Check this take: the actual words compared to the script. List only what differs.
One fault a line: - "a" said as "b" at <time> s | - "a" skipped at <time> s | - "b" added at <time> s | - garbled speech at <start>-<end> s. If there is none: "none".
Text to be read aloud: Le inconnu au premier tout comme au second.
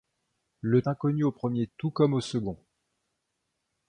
none